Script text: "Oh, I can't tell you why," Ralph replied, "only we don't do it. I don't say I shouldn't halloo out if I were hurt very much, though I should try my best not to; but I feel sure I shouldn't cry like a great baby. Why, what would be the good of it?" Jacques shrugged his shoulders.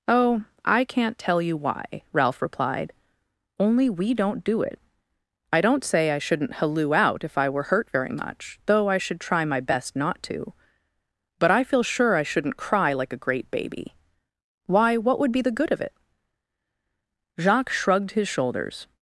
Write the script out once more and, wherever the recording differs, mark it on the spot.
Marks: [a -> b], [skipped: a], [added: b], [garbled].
"Oh, I can't tell you why," Ralph replied, "only we don't do it. I don't say I shouldn't halloo out if I were hurt very much, though I should try my best not to; but I feel sure I shouldn't cry like a great baby. Why, what would be the good of it?" Jacques shrugged his shoulders.